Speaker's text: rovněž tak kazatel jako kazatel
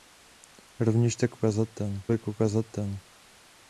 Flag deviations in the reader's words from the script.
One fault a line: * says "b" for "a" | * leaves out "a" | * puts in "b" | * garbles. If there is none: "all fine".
all fine